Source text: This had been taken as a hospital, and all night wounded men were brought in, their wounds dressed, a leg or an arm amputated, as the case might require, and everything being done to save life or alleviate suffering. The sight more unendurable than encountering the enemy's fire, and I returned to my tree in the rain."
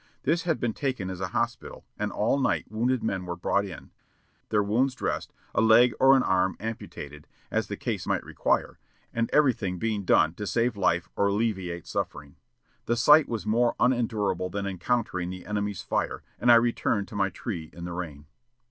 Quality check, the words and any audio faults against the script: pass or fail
fail